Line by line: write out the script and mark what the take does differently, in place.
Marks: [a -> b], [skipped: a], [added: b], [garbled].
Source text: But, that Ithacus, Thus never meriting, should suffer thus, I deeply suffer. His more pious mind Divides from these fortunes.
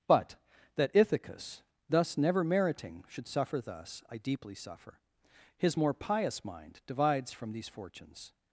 But, that Ithacus, Thus never meriting, should suffer thus, I deeply suffer. His more pious mind Divides from these fortunes.